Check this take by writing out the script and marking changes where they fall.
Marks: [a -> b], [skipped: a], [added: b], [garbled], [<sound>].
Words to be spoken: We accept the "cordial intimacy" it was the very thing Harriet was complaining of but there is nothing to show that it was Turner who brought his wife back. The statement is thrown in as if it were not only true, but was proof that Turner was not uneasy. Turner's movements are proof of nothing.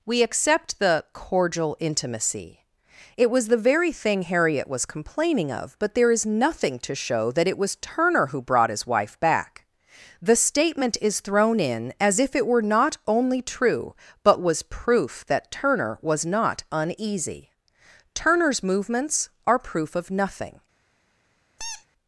We accept the "cordial intimacy" it was the very thing Harriet was complaining of but there is nothing to show that it was Turner who brought his wife back. The statement is thrown in as if it were not only true, but was proof that Turner was not uneasy. Turner's movements are proof of nothing. [squeak]